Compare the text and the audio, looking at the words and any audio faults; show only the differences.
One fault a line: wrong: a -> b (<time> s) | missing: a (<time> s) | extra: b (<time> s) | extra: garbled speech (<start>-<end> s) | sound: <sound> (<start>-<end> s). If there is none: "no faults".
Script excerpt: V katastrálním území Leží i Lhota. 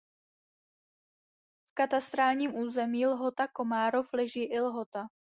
extra: Lhota Komárov (3.1 s)